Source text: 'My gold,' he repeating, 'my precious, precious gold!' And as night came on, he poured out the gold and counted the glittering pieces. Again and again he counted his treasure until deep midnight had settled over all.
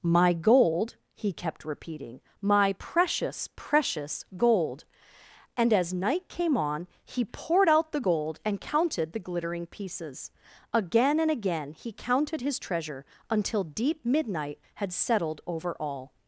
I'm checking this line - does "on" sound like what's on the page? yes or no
yes